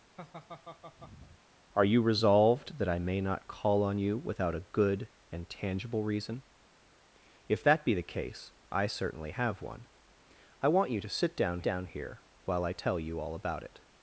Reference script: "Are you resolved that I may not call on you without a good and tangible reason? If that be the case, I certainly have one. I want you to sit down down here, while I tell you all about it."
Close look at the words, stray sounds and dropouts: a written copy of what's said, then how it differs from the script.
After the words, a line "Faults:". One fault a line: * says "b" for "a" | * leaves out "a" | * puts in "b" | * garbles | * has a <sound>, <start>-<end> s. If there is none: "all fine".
"Are you resolved that I may not call on you without a good and tangible reason? If that be the case, I certainly have one. I want you to sit down down here, while I tell you all about it."
Faults:
* has a laugh, 0.2-1.4 s